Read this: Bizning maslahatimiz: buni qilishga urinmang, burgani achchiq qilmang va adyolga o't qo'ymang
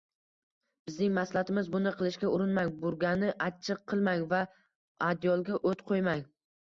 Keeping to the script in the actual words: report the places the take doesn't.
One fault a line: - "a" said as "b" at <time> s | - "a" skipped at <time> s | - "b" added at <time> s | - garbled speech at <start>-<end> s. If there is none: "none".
none